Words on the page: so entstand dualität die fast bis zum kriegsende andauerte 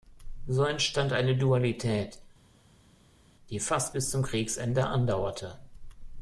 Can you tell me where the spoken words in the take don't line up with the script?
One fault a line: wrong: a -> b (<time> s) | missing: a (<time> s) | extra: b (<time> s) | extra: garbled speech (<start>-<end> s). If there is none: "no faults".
extra: eine (1.1 s)